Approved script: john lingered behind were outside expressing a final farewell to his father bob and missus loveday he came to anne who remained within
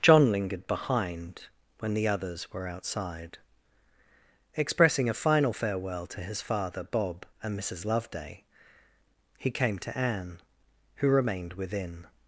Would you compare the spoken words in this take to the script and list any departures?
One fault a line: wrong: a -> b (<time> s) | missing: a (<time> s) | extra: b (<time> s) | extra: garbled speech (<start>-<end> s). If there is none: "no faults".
extra: when the others (1.8 s)